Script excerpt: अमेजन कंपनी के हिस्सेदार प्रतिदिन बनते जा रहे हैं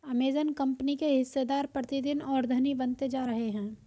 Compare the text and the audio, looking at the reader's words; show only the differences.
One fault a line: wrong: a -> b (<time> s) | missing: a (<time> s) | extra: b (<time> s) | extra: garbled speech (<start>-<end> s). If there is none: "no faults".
extra: और धनी (2.2 s)